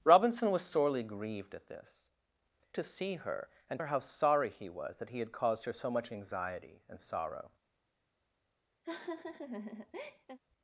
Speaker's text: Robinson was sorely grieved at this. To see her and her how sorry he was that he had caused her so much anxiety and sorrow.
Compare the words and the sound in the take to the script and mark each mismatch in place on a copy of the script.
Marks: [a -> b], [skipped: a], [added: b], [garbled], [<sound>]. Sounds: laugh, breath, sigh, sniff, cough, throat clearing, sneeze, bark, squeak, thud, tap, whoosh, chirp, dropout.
Robinson was sorely grieved at this. To see her and her how sorry he was that he had caused her so much anxiety and sorrow. [laugh]